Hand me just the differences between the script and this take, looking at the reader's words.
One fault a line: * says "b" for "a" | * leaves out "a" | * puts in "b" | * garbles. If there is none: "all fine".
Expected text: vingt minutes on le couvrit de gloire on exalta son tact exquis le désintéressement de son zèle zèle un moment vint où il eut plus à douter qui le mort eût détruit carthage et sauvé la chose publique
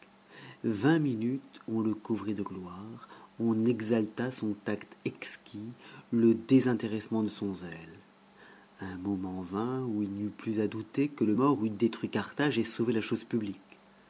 * leaves out "zèle"
* puts in "n'y"
* says "que" for "qui"